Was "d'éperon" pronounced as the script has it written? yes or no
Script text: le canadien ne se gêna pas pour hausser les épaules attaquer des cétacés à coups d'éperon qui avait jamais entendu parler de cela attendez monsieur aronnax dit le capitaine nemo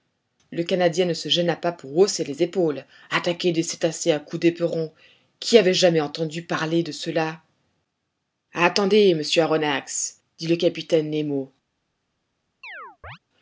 yes